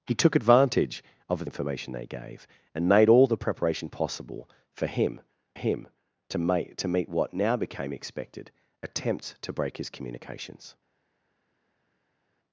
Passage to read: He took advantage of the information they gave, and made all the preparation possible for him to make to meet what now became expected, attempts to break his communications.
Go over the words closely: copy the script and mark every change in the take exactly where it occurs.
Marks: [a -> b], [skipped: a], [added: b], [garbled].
He took advantage of [skipped: the] information they gave, and made all the preparation possible for him [added: him] to make to meet what now became expected, attempts to break his communications.